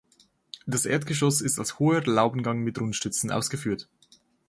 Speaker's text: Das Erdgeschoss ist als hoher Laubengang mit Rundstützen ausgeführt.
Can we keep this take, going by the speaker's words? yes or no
yes